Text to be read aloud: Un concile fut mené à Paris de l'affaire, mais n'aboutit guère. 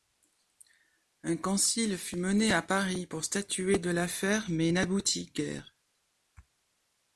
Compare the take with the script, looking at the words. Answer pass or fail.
fail